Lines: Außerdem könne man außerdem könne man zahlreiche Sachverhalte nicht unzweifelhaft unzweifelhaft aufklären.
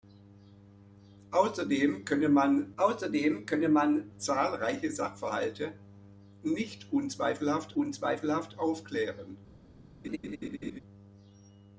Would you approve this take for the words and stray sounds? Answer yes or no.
no